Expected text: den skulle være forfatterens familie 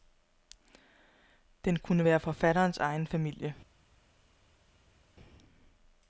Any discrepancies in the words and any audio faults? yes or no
yes